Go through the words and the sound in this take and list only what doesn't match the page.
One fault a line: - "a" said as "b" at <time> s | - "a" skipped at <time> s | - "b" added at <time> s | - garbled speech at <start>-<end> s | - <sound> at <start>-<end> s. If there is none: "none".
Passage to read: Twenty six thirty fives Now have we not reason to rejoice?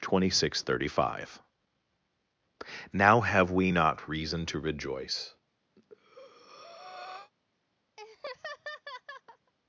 - "fives" said as "five" at 1.1 s
- breath at 5.8-7.3 s
- laugh at 8.0-9.5 s